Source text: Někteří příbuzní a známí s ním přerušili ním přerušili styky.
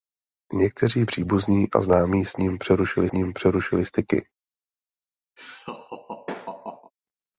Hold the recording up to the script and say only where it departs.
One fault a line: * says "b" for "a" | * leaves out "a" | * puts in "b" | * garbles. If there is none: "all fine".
all fine